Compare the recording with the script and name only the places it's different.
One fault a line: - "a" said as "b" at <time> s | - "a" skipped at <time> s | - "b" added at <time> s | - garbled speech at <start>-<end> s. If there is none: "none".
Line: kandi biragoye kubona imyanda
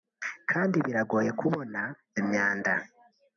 none